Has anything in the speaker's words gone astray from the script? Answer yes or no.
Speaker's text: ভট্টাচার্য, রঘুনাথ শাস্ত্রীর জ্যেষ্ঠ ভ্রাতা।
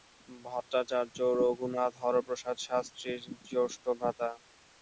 yes